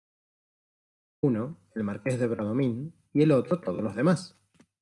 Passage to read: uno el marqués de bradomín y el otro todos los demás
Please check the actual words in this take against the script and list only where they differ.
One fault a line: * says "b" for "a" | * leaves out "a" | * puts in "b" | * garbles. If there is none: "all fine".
all fine